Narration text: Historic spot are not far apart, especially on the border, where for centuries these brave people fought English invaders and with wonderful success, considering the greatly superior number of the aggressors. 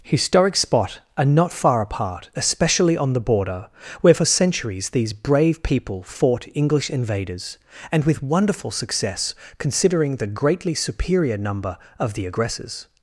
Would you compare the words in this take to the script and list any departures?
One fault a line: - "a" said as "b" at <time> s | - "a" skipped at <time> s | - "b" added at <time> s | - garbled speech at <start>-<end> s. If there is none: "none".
none